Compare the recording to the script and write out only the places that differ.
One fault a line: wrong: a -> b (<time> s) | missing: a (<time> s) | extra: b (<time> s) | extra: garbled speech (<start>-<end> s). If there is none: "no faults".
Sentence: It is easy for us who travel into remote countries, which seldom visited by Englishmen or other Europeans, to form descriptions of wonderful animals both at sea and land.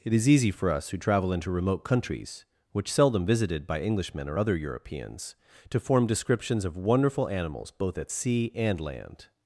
no faults